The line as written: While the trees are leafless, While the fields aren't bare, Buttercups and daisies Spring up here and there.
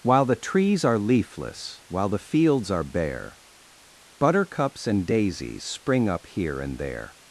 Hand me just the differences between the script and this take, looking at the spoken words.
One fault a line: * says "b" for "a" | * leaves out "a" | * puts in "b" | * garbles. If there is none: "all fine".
* says "are" for "aren't"